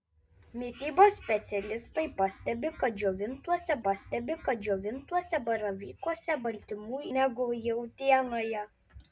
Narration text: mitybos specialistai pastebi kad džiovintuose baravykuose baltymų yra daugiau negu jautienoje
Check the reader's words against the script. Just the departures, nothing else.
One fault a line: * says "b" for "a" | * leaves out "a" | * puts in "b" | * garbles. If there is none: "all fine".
* puts in "pastebi kad džiovintuose"
* leaves out "yra daugiau"